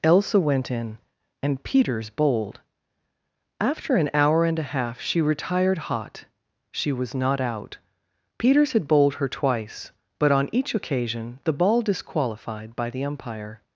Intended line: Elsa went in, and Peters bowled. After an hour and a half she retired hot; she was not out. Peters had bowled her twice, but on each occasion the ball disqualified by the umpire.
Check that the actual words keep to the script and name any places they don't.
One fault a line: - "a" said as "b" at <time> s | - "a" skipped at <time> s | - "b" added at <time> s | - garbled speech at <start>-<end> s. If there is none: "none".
none